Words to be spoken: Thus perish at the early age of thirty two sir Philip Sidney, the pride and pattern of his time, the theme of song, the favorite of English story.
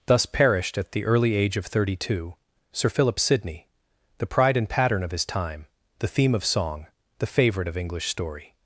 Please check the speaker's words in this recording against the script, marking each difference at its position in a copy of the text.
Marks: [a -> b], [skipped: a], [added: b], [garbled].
Thus [perish -> perished] at the early age of thirty two sir Philip Sidney, the pride and pattern of his time, the theme of song, the favorite of English story.